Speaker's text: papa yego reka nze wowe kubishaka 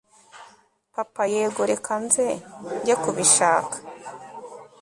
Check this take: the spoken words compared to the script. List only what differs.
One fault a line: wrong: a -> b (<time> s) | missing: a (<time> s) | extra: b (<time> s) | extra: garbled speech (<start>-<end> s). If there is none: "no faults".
wrong: wowe -> njye (2.8 s)